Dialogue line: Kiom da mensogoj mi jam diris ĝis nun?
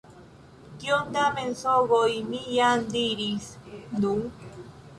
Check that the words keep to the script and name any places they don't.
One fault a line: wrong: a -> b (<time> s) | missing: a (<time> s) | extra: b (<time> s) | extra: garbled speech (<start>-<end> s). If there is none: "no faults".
missing: ĝis (3.5 s)